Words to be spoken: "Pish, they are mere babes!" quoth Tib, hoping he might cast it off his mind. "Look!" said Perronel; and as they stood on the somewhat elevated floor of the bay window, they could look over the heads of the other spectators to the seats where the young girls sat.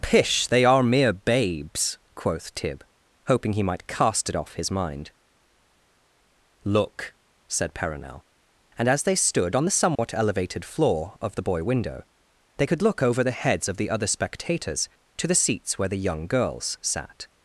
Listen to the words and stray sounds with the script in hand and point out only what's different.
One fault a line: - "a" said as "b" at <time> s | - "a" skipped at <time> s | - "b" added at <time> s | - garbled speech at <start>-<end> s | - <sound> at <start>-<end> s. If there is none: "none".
- dropout at 10.0-10.0 s
- "bay" said as "boy" at 11.4 s